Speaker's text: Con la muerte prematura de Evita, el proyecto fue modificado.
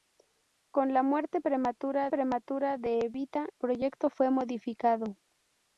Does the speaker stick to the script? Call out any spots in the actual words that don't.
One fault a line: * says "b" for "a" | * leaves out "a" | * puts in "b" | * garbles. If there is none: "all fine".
* puts in "prematura"
* leaves out "el"